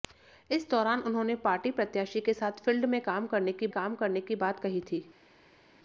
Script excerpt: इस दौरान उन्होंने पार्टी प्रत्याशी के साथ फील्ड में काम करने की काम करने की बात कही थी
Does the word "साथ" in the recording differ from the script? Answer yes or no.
no